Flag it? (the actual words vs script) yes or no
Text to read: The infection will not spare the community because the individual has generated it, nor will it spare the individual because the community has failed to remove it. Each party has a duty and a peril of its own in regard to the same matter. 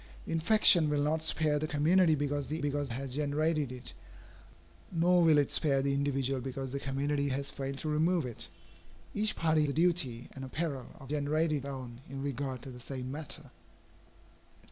yes